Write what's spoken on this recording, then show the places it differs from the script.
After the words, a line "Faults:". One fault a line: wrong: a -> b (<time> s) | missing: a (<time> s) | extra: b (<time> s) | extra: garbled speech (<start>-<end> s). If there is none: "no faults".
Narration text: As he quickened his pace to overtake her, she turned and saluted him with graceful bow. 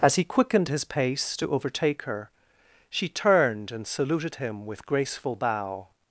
As he quickened his pace to overtake her, she turned and saluted him with graceful bow.
Faults:
no faults